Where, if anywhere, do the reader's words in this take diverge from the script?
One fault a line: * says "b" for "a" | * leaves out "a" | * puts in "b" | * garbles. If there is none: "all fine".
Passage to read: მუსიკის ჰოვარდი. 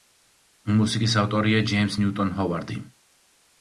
* puts in "ავტორია ჯეიმზ ნიუტონ"